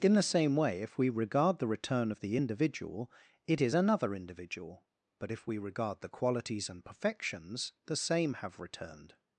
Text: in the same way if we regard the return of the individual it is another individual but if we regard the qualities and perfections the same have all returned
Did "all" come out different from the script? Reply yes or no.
yes